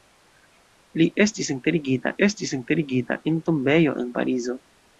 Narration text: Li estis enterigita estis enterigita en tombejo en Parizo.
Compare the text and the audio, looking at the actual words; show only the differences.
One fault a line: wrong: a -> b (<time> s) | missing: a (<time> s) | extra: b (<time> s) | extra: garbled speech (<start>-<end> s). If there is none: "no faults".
no faults